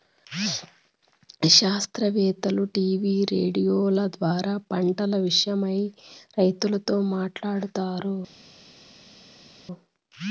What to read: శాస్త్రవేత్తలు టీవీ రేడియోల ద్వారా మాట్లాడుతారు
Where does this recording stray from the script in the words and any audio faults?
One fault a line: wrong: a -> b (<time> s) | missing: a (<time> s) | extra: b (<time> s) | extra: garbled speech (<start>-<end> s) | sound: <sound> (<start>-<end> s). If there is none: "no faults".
extra: పంటల విషయమై రైతులతో (4.7 s)